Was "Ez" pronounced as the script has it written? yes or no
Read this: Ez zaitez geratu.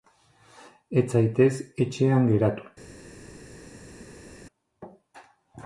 yes